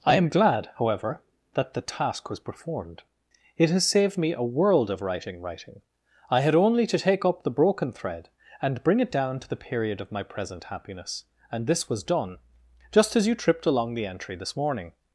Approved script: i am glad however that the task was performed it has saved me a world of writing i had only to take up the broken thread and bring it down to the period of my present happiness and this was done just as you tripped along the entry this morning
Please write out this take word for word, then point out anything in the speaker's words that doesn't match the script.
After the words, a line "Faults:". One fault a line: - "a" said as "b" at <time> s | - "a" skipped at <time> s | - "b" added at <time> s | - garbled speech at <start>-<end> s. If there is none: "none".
i am glad however that the task was performed it has saved me a world of writing writing i had only to take up the broken thread and bring it down to the period of my present happiness and this was done just as you tripped along the entry this morning
Faults:
- "writing" added at 5.4 s